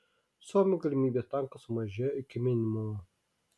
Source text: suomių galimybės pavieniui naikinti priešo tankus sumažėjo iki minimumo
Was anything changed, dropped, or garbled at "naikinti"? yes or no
yes